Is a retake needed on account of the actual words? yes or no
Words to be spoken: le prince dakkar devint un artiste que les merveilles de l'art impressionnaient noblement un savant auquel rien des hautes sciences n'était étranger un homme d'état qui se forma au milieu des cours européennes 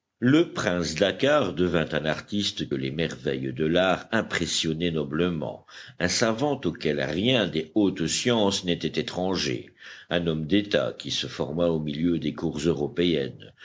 yes